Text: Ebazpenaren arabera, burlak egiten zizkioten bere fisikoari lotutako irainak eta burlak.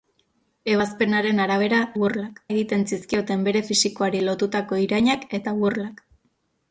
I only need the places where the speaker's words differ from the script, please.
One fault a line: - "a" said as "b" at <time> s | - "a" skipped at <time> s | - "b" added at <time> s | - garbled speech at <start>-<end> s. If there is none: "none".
none